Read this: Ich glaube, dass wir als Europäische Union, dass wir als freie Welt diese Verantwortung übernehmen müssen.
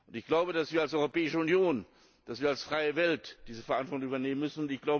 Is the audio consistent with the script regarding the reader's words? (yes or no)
yes